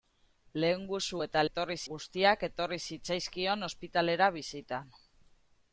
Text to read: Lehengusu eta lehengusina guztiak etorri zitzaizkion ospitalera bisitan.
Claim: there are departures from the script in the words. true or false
true